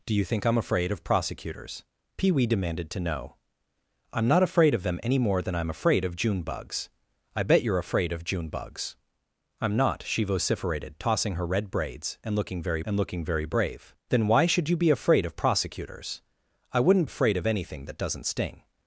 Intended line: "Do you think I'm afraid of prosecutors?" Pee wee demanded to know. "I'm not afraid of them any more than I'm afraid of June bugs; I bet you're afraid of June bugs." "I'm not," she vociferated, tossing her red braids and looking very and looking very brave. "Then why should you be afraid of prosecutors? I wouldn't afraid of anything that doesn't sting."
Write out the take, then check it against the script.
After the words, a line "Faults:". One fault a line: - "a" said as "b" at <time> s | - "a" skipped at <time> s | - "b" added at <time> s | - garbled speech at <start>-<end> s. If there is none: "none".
"Do you think I'm afraid of prosecutors?" Pee wee demanded to know. "I'm not afraid of them any more than I'm afraid of June bugs; I bet you're afraid of June bugs." "I'm not," she vociferated, tossing her red braids and looking very and looking very brave. "Then why should you be afraid of prosecutors? I wouldn't afraid of anything that doesn't sting."
Faults:
none